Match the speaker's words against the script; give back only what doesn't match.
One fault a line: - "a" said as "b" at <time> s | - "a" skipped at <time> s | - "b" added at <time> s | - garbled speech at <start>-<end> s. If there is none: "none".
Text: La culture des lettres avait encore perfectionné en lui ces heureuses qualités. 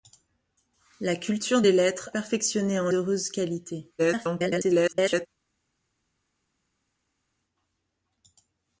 - "avait encore" skipped at 2.1 s
- "lui ces" skipped at 2.9 s
- garbled speech at 4.0-5.3 s